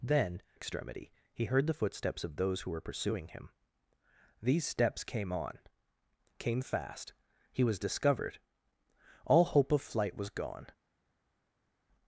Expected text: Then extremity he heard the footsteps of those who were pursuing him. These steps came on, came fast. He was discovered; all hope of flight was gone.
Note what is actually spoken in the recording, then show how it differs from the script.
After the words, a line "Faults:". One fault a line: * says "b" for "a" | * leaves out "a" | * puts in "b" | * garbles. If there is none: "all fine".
Then extremity he heard the footsteps of those who were pursuing him. These steps came on, came fast. He was discovered; all hope of flight was gone.
Faults:
all fine